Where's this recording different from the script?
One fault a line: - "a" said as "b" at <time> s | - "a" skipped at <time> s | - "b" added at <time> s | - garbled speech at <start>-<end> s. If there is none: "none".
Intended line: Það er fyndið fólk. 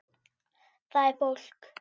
- "fyndið" skipped at 1.2 s